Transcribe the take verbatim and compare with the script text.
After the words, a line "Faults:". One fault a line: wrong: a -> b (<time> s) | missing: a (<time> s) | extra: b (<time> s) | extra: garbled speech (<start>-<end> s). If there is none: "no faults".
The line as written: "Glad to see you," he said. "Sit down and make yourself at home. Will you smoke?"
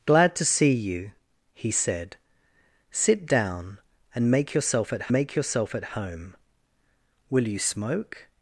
"Glad to see you," he said. "Sit down and make yourself at make yourself at home. Will you smoke?"
Faults:
extra: make yourself at (5.1 s)